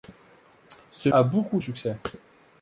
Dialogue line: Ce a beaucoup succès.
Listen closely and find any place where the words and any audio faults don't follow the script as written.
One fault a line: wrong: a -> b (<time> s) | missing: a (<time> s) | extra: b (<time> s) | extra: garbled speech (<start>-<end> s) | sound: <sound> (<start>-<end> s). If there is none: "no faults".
no faults